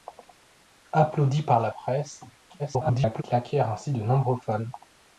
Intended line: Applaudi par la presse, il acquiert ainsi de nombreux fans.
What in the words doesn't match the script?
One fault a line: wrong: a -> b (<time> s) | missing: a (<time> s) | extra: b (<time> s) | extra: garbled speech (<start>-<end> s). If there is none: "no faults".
extra: garbled speech (2.6-3.2 s)